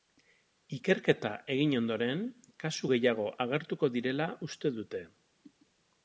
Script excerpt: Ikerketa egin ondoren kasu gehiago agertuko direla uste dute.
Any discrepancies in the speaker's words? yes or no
no